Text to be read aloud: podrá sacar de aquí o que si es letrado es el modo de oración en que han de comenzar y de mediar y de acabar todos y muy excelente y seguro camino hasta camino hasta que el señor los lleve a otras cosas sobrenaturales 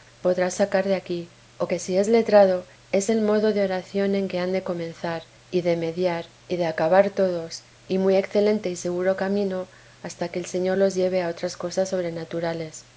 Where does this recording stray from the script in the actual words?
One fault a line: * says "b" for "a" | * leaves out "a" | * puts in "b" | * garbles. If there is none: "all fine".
* leaves out "camino hasta"